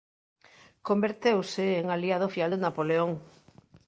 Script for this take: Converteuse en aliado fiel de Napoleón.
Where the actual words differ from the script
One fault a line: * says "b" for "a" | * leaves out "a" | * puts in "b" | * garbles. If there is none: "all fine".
all fine